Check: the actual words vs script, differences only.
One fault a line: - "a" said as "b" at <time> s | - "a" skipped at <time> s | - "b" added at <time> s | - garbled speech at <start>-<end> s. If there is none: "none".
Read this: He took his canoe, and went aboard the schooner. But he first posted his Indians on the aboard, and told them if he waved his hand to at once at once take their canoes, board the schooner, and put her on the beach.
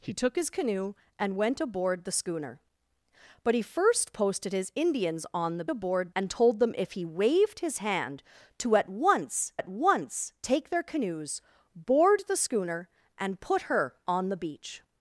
none